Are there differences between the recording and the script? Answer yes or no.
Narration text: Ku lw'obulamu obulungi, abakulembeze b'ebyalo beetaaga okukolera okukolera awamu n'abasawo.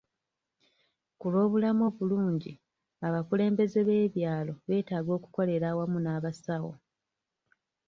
yes